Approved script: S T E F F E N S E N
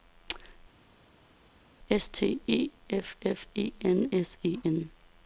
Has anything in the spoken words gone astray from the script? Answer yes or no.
no